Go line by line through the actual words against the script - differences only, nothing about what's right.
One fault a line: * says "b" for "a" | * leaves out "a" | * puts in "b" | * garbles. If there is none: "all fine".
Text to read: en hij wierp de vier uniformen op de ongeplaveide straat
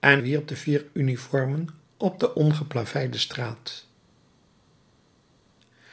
* leaves out "hij"